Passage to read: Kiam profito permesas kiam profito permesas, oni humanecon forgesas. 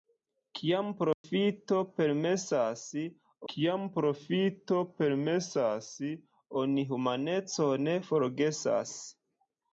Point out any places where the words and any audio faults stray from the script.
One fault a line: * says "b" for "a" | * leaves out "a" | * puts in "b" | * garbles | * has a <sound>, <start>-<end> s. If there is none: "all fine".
* has a dropout, 1.1-1.2 s